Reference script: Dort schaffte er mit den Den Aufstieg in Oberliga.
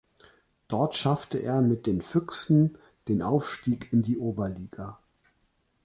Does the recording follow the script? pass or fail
fail